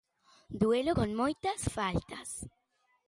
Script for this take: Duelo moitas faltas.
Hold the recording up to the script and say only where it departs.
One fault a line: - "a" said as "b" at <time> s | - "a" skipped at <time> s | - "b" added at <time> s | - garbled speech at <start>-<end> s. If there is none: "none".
- "con" added at 1.0 s